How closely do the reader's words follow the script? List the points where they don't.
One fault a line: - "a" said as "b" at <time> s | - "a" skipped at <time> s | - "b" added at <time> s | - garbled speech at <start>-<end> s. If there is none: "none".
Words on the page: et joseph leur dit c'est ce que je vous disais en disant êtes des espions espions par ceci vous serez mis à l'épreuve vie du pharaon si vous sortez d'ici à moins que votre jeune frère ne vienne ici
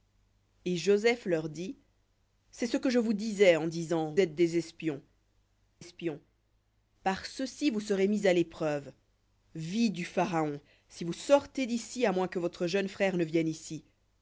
none